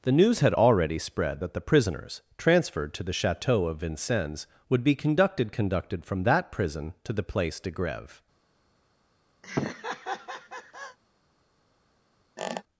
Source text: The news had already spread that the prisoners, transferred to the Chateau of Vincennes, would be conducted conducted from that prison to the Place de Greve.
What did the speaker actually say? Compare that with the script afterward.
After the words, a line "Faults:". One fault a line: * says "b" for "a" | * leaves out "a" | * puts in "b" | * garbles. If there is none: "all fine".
The news had already spread that the prisoners, transferred to the Chateau of Vincennes, would be conducted conducted from that prison to the Place de Greve.
Faults:
all fine